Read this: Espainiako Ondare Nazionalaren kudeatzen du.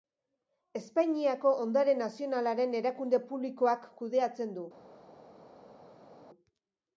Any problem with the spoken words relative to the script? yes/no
yes